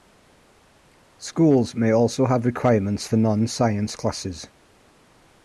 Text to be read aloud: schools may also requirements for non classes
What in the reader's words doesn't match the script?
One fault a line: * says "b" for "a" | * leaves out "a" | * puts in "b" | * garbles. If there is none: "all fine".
* puts in "have"
* puts in "science"